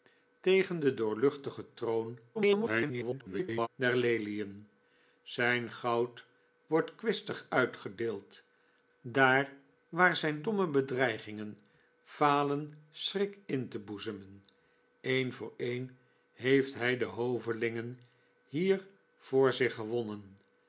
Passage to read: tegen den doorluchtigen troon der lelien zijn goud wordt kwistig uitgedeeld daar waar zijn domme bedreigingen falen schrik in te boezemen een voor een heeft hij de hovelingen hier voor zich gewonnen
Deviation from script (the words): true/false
true